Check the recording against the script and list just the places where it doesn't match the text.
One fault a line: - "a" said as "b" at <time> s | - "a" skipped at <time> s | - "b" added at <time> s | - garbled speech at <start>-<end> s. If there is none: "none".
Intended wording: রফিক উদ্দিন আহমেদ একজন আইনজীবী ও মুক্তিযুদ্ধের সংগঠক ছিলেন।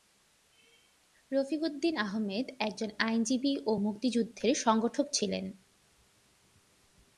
none